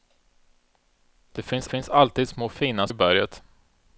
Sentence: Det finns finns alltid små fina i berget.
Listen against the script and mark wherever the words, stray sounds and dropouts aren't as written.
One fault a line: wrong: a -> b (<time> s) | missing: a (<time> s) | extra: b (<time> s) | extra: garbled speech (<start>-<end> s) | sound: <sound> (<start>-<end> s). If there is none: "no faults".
no faults